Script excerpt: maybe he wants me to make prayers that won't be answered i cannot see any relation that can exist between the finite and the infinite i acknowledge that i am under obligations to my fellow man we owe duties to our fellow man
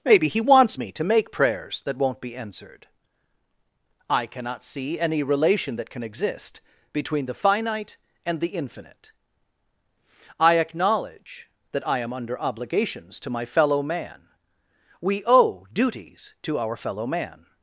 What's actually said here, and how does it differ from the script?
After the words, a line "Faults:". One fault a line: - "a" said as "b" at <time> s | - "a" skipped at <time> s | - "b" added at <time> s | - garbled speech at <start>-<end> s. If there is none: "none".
maybe he wants me to make prayers that won't be answered i cannot see any relation that can exist between the finite and the infinite i acknowledge that i am under obligations to my fellow man we owe duties to our fellow man
Faults:
none